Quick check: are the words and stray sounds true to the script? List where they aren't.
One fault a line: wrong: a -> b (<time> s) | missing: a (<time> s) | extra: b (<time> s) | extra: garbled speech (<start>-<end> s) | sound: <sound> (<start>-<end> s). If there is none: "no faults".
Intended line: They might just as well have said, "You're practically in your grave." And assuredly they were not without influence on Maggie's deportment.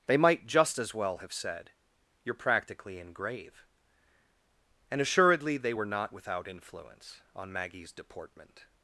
missing: your (3.1 s)